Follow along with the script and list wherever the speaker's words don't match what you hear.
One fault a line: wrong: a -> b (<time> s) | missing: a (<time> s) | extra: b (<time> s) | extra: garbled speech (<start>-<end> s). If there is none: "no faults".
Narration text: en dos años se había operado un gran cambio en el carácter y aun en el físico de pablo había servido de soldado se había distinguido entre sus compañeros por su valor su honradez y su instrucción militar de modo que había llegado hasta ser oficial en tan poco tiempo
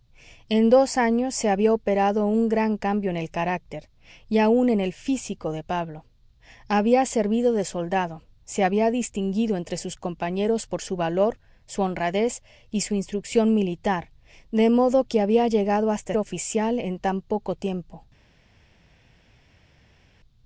missing: ser (16.1 s)